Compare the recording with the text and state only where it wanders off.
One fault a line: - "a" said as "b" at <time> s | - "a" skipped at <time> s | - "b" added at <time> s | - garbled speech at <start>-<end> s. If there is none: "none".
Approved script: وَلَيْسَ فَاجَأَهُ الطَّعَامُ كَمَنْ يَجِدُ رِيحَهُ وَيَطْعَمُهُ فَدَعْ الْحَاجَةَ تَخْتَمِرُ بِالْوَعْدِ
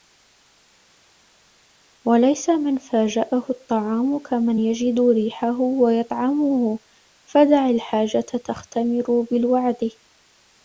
- "مَنْ" added at 2.5 s